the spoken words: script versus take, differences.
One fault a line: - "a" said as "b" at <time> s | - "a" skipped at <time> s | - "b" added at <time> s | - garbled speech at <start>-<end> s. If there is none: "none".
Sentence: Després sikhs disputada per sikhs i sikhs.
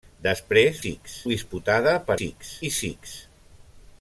none